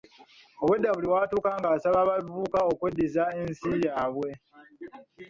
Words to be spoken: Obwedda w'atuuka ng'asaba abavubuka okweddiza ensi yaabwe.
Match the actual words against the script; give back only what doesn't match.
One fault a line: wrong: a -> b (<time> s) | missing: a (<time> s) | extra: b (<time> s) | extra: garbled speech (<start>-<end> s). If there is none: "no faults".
extra: buli (0.9 s)